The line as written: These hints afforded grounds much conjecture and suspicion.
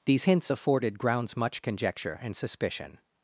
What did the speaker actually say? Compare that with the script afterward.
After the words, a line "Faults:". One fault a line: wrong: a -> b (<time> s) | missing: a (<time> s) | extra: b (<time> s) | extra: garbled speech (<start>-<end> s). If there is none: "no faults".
These hints afforded grounds much conjecture and suspicion.
Faults:
no faults